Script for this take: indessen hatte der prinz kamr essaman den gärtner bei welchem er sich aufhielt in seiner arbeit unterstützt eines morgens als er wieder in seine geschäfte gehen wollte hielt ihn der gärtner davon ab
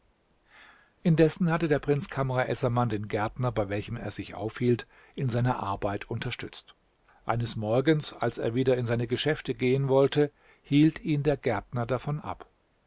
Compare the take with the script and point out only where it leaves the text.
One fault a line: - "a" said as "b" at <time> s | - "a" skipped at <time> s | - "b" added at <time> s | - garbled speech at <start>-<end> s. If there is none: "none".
none